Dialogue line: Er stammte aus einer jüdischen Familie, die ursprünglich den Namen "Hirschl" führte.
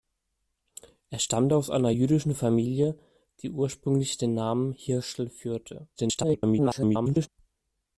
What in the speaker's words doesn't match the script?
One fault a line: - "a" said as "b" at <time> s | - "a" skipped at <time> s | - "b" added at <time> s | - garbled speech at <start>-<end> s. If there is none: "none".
- garbled speech at 6.0-7.3 s